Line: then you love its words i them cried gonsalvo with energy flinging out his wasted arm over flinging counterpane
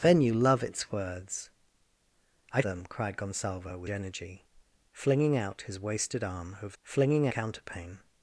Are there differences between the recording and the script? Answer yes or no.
no